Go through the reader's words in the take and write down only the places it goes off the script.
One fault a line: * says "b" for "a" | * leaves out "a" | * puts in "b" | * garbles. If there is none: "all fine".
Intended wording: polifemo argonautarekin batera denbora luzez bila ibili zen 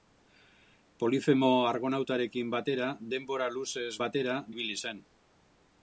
* says "batera" for "bila"